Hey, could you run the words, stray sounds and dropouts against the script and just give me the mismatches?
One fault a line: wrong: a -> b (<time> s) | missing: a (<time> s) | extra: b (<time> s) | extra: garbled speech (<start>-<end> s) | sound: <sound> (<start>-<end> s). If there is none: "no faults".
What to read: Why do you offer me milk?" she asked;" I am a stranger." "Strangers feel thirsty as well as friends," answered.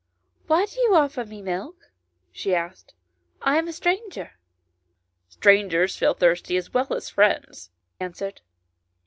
no faults